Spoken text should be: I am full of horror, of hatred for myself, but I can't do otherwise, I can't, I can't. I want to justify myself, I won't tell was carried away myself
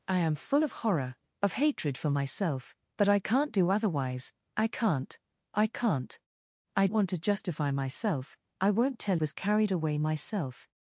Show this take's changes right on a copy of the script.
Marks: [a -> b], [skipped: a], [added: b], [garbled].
I am full of horror, of hatred for myself, but I can't do otherwise, I can't, I can't. I want to justify myself, I won't tell was carried away myself